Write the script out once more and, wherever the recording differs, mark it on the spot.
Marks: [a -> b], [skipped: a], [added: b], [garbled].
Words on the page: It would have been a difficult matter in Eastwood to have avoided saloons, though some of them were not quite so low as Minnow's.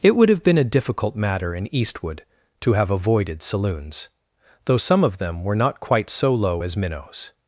It would have been a difficult matter in Eastwood to have avoided saloons, though some of them were not quite so low as Minnow's.